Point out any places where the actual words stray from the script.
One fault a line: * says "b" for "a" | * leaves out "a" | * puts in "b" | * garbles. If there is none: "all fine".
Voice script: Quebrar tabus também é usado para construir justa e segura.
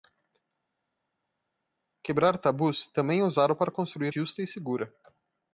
all fine